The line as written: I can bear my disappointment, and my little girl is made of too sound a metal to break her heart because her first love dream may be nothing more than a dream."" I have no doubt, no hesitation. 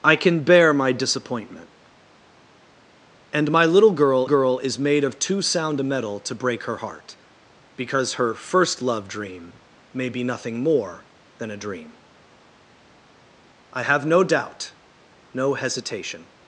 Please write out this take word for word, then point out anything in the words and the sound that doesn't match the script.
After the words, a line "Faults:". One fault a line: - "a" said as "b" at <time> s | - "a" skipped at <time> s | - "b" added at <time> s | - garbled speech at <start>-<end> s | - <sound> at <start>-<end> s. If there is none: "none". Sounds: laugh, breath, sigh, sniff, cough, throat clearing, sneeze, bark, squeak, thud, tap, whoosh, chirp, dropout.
I can bear my disappointment, and my little girl girl is made of too sound a metal to break her heart because her first love dream may be nothing more than a dream."" I have no doubt, no hesitation.
Faults:
- "girl" added at 4.2 s